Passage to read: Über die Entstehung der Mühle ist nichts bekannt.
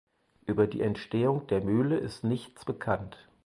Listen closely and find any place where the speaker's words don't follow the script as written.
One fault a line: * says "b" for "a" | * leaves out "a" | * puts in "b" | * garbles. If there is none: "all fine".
all fine